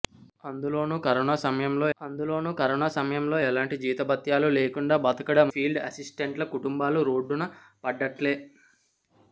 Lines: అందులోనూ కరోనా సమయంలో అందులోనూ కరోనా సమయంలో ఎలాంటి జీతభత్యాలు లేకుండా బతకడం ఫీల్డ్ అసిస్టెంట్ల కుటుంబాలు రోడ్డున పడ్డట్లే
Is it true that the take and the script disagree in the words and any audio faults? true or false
false